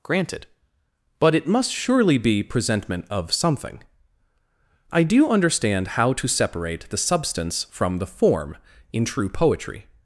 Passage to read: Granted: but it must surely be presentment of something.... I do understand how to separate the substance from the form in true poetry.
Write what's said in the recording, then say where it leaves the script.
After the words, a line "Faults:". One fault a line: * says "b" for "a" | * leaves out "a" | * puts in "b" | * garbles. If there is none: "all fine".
Granted: but it must surely be presentment of something.... I do understand how to separate the substance from the form in true poetry.
Faults:
all fine